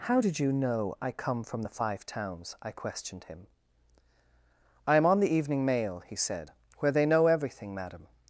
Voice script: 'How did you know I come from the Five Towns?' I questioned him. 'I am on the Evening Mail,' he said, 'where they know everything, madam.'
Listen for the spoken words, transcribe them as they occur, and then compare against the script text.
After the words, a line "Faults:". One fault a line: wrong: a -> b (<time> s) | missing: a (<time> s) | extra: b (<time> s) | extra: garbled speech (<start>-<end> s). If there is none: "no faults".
'How did you know I come from the Five Towns?' I questioned him. 'I am on the Evening Mail,' he said, 'where they know everything, madam.'
Faults:
no faults